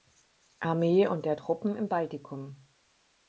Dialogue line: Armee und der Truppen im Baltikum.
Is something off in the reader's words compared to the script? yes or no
no